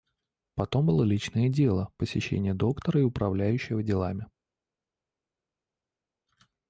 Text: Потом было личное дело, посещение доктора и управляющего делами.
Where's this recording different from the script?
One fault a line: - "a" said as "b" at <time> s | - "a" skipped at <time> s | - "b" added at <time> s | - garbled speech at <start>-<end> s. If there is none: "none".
none